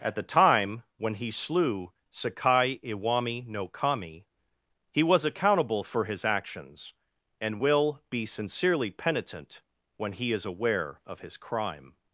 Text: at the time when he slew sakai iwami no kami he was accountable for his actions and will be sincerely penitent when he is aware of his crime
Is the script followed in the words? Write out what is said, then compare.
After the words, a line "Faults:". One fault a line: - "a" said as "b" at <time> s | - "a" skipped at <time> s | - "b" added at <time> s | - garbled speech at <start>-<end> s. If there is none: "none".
at the time when he slew sakai iwami no kami he was accountable for his actions and will be sincerely penitent when he is aware of his crime
Faults:
none